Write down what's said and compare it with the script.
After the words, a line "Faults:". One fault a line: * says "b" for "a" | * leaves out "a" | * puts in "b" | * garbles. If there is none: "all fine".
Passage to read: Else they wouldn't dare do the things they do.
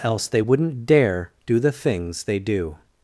Else they wouldn't dare do the things they do.
Faults:
all fine